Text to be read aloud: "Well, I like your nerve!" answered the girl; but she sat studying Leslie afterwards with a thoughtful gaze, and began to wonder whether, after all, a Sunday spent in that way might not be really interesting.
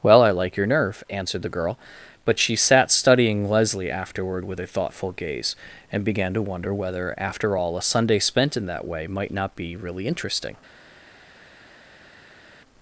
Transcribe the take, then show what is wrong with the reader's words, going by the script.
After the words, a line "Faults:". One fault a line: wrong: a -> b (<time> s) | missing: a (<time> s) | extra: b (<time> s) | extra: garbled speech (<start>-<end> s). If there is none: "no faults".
"Well, I like your nerve!" answered the girl; but she sat studying Leslie afterward with a thoughtful gaze, and began to wonder whether, after all, a Sunday spent in that way might not be really interesting.
Faults:
wrong: afterwards -> afterward (3.9 s)